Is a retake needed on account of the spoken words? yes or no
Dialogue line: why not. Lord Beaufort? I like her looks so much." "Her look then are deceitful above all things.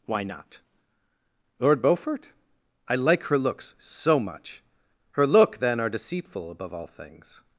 no